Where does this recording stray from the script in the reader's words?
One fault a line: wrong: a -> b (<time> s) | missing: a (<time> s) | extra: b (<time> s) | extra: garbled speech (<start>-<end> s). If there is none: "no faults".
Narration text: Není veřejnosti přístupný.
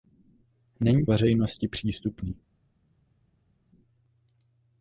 no faults